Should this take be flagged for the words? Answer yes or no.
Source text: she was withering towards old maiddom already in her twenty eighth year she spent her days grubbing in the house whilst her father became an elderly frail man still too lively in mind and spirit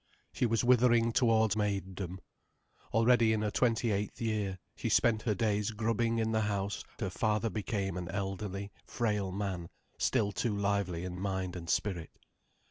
yes